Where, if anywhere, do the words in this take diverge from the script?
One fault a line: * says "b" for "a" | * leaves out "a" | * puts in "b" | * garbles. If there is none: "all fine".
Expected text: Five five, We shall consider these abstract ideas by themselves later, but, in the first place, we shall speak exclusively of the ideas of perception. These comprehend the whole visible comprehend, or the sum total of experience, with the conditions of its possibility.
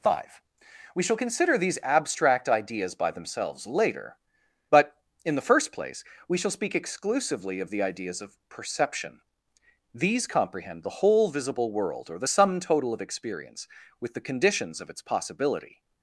* leaves out "five"
* says "world" for "comprehend"